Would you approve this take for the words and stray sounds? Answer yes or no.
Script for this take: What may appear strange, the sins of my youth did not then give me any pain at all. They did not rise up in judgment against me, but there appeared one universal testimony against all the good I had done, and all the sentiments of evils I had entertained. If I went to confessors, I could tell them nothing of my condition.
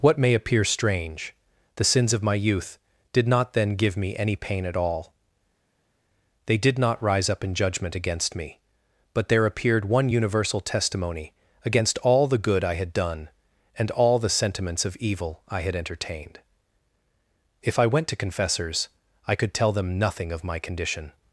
no